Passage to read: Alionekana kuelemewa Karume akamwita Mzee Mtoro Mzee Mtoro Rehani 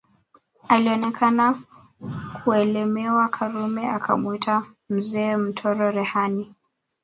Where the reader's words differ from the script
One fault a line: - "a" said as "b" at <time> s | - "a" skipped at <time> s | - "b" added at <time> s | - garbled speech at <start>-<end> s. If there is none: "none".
- "Mzee Mtoro" skipped at 5.9 s